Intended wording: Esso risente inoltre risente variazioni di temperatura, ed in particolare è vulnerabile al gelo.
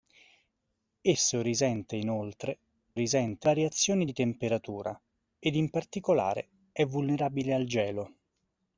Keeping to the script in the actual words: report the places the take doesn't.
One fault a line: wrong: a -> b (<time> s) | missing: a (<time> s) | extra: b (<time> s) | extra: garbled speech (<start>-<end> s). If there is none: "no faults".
no faults